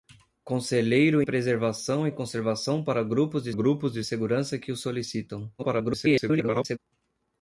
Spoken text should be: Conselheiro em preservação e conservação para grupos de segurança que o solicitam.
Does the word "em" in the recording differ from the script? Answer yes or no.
yes